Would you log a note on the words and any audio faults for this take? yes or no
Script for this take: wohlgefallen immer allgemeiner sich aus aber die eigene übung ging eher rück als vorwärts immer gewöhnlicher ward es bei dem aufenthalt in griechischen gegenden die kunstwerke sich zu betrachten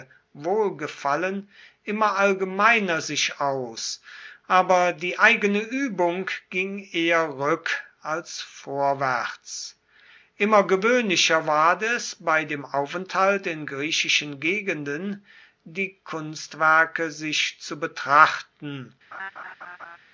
yes